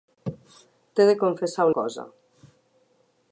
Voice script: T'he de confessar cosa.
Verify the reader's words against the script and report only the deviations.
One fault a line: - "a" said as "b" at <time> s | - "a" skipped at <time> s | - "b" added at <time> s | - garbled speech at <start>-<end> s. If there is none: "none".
none